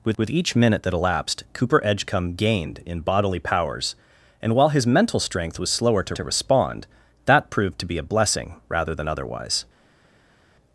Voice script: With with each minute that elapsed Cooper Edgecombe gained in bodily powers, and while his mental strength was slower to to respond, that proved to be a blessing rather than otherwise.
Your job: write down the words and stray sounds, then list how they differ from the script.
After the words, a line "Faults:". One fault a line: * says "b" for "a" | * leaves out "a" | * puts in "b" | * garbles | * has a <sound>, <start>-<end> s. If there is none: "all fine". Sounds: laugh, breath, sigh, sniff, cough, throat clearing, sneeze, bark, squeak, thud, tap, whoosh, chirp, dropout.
With with each minute that elapsed Cooper Edgecombe gained in bodily powers, and while his mental strength was slower to to respond, that proved to be a blessing rather than otherwise.
Faults:
all fine